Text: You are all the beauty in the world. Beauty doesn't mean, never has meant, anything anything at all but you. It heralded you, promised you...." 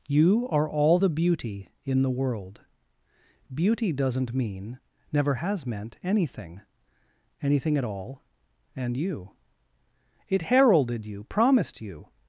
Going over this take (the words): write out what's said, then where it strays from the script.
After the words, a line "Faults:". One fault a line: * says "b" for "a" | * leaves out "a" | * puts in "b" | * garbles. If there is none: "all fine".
You are all the beauty in the world. Beauty doesn't mean, never has meant, anything anything at all and you. It heralded you, promised you...."
Faults:
* says "and" for "but"